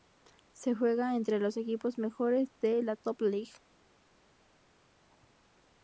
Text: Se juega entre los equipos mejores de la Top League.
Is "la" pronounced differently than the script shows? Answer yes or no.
no